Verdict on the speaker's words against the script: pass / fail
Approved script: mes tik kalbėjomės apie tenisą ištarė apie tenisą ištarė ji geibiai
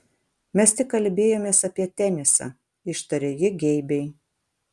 fail